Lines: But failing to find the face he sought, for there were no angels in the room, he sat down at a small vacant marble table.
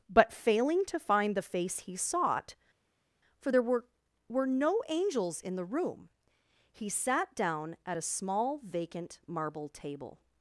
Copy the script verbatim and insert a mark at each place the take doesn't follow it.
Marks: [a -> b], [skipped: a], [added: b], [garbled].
But failing to find the face he sought, for there were [added: were] no angels in the room, he sat down at a small vacant marble table.